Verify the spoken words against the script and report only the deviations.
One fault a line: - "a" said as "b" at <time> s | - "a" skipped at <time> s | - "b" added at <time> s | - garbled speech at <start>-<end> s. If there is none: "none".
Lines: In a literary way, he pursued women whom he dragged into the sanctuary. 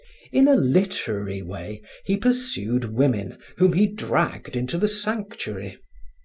none